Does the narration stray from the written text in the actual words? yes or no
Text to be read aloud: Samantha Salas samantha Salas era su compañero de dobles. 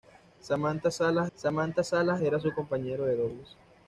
no